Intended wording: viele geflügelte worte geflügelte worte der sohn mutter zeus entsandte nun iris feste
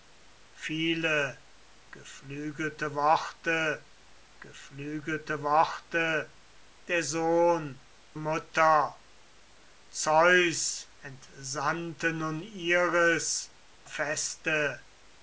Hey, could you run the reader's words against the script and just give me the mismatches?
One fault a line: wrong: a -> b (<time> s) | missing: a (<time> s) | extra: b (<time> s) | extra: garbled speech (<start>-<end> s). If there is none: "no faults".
no faults